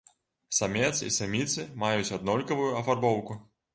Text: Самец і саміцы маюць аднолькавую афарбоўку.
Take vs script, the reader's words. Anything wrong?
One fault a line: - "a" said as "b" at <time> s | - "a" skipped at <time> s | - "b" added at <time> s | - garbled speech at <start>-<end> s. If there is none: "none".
none